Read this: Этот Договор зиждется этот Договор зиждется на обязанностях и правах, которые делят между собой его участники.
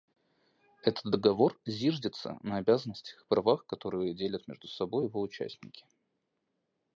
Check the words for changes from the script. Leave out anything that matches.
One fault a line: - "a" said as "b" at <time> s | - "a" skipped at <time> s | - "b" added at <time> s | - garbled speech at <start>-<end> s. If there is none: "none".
- "этот Договор зиждется" skipped at 2.4 s